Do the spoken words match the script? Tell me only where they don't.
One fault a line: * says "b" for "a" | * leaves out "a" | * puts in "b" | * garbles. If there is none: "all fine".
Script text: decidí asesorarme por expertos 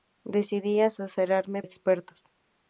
* leaves out "por"